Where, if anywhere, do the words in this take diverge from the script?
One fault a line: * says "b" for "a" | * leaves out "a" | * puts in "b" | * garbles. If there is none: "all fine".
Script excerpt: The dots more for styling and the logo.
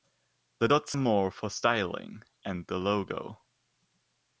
all fine